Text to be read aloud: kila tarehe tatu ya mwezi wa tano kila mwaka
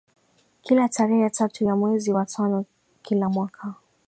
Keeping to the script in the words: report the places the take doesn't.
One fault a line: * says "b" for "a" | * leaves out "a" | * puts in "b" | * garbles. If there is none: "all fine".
all fine